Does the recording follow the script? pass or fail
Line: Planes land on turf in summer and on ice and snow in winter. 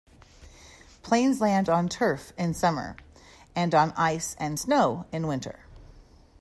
pass